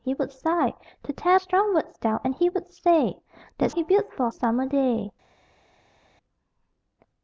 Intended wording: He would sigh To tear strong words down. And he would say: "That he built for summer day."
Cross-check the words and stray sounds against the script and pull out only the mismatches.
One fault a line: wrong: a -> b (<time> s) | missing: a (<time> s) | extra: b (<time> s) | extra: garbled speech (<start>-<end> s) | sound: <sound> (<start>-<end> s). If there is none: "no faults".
no faults